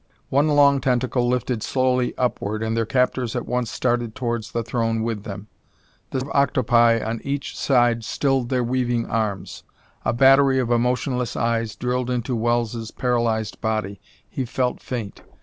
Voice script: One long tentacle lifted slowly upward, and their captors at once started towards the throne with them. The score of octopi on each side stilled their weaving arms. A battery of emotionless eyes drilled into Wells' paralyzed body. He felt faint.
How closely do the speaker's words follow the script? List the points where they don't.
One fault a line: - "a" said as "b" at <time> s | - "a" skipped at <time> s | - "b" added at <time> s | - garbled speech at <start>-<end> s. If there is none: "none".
- "score" skipped at 6.2 s